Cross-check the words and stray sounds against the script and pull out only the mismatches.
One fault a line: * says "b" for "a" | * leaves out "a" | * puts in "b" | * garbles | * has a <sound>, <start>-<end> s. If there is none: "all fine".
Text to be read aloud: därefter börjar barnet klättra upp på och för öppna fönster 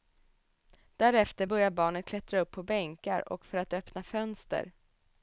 * puts in "bänkar"
* puts in "att"